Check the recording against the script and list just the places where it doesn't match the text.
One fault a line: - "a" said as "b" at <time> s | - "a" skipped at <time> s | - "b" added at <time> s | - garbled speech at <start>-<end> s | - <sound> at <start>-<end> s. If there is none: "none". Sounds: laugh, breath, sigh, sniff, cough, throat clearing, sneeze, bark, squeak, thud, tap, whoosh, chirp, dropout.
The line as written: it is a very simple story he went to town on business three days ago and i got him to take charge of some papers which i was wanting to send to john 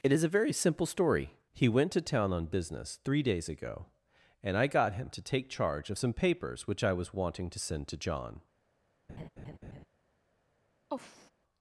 - laugh at 9.1-9.9 s
- sigh at 10.9-11.3 s